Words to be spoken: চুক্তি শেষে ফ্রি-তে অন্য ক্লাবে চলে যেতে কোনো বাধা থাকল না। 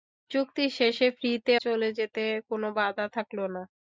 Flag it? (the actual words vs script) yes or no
yes